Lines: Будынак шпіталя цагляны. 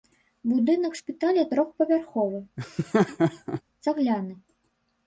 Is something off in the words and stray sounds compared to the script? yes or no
yes